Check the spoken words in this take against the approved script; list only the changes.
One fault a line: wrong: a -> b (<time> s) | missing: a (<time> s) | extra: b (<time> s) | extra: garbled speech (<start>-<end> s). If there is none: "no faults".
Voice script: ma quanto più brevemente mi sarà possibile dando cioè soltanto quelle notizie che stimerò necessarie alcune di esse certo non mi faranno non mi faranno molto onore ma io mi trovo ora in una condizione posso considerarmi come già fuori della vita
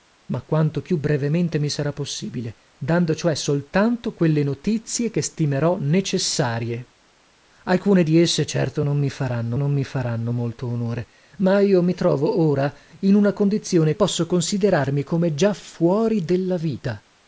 no faults